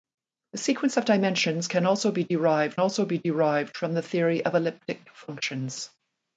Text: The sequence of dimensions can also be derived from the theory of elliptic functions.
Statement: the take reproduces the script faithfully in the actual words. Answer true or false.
false